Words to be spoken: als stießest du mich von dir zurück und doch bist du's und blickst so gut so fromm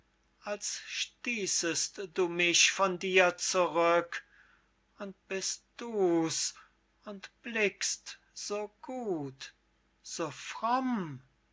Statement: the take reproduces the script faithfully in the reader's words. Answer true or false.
false